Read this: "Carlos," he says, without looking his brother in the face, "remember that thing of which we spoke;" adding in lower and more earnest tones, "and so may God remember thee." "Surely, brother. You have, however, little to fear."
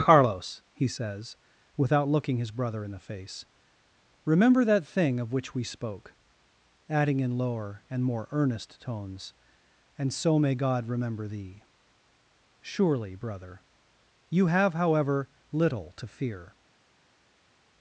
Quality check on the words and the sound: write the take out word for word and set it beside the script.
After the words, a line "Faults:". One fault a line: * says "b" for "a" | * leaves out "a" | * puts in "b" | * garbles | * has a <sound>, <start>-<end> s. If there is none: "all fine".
"Carlos," he says, without looking his brother in the face, "remember that thing of which we spoke;" adding in lower and more earnest tones, "and so may God remember thee." "Surely, brother. You have, however, little to fear."
Faults:
all fine